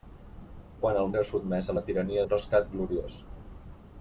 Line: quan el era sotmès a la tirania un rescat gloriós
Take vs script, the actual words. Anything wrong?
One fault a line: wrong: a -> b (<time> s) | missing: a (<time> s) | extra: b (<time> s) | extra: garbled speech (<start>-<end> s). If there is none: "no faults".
no faults